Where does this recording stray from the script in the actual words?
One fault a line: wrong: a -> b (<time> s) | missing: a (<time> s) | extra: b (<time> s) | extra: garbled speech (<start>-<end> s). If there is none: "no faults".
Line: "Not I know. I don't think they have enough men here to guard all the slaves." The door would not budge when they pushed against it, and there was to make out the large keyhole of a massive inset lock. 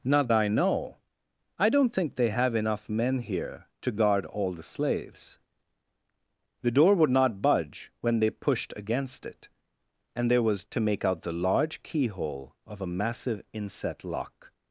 no faults